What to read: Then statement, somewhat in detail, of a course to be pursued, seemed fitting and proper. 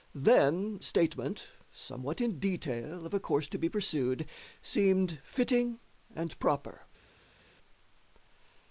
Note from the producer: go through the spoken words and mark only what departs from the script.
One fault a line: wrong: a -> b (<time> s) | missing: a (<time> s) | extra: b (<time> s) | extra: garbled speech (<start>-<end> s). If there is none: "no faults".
no faults